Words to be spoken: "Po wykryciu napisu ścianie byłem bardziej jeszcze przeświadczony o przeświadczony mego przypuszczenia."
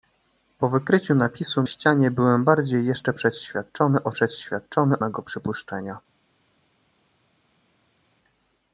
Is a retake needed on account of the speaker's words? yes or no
no